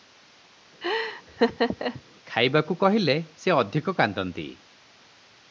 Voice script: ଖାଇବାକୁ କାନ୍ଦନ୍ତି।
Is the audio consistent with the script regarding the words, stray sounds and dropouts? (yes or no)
no